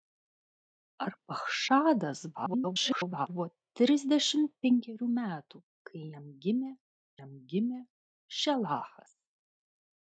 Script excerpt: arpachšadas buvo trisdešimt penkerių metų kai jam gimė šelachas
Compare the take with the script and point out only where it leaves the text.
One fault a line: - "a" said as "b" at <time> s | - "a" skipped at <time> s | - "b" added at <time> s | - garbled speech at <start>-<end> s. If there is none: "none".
- garbled speech at 2.3-3.3 s
- "jam gimė" added at 7.2 s